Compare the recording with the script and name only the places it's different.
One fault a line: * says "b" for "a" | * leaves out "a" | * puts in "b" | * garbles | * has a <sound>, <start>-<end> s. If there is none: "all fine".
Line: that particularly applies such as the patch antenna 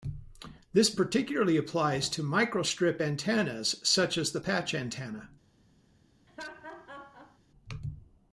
* says "this" for "that"
* puts in "to microstrip antennas"
* has a laugh, 6.3-7.4 s